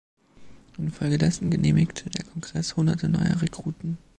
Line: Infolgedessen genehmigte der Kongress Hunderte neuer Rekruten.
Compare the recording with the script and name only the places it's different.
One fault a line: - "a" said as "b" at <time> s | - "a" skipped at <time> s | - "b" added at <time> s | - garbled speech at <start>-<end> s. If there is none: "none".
none